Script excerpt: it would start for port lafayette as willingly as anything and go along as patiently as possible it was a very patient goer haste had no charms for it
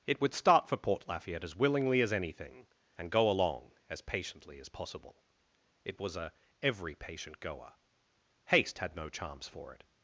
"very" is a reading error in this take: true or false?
true